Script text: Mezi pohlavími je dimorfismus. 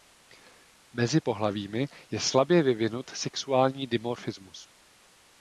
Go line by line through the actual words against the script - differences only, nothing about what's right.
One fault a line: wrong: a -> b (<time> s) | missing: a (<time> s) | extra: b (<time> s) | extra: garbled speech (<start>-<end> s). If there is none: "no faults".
extra: slabě vyvinut sexuální (2.2 s)